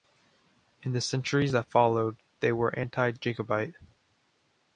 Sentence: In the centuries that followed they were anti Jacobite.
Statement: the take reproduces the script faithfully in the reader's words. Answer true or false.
true